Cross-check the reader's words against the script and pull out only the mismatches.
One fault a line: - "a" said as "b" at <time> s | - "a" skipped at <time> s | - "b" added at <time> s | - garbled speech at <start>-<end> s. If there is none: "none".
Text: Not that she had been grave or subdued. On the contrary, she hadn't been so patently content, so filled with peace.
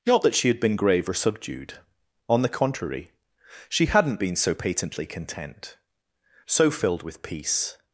none